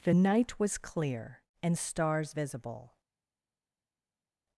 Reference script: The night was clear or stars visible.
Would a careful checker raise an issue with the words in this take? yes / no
yes